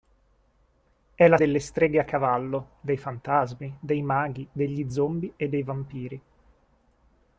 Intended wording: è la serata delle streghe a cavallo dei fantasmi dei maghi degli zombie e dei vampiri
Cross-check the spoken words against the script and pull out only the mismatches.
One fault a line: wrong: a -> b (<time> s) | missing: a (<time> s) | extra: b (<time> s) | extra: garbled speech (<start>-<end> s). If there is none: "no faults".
missing: serata (1.4 s)